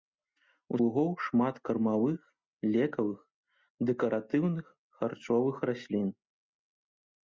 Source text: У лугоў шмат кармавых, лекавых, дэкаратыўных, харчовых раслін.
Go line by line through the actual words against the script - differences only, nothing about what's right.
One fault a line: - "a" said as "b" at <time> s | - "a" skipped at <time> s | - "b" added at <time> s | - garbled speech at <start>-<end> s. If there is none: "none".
none